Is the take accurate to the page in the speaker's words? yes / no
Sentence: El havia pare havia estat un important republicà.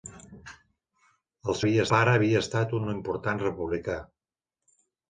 yes